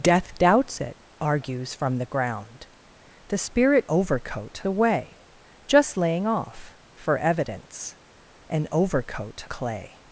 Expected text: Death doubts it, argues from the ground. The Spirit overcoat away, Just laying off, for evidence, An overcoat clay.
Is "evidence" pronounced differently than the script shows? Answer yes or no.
no